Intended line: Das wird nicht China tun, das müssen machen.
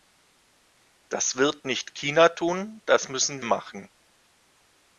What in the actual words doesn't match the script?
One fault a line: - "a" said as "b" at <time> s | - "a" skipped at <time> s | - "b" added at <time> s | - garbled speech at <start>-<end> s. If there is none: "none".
none